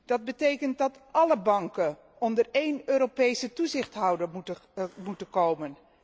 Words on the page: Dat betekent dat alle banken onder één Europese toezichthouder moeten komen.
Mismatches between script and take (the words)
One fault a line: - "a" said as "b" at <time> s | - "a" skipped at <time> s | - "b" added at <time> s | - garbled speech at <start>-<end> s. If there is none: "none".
none